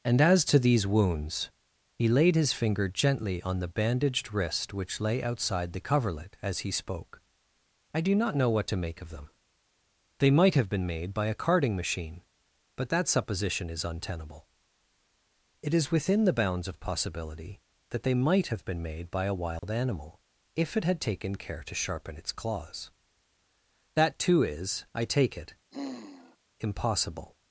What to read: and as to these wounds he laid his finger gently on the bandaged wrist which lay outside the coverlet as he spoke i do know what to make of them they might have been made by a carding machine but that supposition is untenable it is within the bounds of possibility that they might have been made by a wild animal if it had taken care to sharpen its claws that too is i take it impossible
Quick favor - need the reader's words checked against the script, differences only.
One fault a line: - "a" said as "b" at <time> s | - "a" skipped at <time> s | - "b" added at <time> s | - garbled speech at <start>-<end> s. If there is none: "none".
- "not" added at 8.1 s